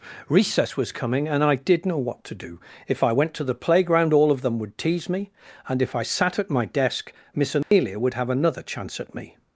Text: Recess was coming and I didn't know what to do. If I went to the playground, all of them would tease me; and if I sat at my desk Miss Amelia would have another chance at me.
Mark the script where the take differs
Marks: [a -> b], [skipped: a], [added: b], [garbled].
Recess was coming and I [didn't -> did] know what to do. If I went to the playground, all of them would tease me; and if I sat at my desk Miss Amelia would have another chance at me.